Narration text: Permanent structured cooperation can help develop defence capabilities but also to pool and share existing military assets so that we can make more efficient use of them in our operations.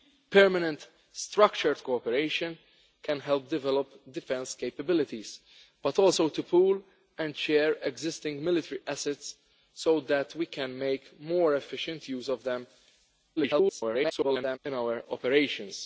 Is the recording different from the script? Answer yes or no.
yes